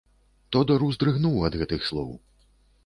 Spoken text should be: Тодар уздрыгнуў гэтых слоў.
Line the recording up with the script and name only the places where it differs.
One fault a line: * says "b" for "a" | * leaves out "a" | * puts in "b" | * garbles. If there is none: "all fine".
* puts in "ад"